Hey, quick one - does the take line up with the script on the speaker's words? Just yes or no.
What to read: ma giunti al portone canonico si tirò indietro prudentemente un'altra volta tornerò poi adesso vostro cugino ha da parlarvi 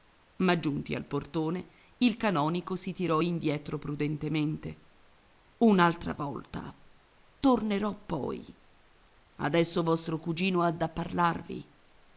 no